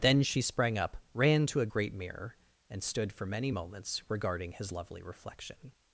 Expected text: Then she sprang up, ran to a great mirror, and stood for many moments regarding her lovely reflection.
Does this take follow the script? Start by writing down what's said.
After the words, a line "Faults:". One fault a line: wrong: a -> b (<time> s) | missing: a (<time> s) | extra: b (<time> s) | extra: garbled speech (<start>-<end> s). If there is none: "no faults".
Then she sprang up, ran to a great mirror, and stood for many moments regarding his lovely reflection.
Faults:
wrong: her -> his (4.5 s)